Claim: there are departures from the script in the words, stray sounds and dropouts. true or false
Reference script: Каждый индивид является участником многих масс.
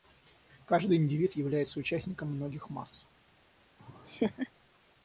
true